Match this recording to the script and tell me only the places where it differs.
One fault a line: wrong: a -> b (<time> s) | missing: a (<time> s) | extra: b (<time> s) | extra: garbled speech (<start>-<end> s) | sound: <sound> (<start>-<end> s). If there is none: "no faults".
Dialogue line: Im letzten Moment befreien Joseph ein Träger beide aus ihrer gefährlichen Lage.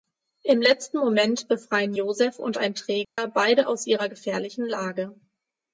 extra: und (2.4 s)
sound: dropout (3.0-3.2 s)